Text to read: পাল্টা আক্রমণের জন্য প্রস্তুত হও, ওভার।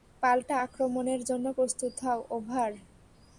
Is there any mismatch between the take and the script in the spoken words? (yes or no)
no